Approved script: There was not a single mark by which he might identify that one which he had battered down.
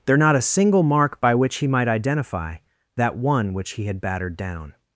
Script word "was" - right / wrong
wrong